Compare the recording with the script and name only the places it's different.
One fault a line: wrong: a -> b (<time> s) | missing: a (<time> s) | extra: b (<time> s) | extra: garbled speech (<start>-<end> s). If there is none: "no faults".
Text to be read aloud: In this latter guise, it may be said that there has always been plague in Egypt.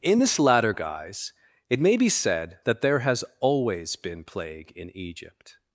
no faults